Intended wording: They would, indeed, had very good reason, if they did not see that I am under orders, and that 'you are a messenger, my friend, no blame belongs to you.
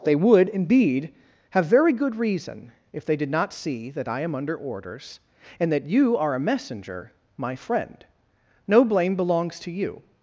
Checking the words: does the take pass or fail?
fail